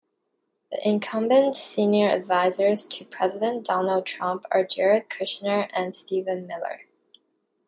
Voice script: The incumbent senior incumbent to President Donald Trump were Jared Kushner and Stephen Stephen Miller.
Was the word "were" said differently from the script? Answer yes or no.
yes